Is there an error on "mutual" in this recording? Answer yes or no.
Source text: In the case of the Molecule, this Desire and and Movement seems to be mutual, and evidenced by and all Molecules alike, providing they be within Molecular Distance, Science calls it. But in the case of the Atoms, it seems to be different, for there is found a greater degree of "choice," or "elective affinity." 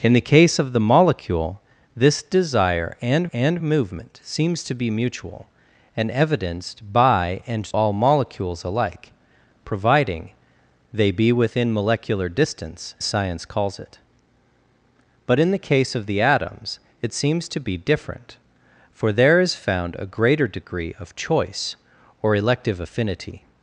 no